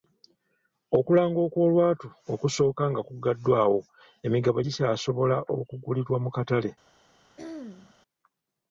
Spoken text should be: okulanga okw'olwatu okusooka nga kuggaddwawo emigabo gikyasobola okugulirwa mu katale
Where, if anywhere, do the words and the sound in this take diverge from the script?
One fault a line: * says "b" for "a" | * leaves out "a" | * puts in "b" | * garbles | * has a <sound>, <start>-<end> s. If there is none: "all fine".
* has a throat clearing, 7.4-7.9 s